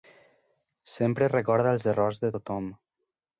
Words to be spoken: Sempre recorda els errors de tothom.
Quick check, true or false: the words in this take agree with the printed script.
true